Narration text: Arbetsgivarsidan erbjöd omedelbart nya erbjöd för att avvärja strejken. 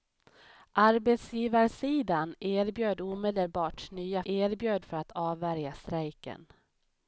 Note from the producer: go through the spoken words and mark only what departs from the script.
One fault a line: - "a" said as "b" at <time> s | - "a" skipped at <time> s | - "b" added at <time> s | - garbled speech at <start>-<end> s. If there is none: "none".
none